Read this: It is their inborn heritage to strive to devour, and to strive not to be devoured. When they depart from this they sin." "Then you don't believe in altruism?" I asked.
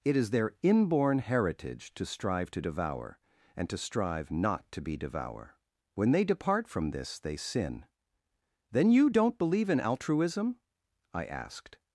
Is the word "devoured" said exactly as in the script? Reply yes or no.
no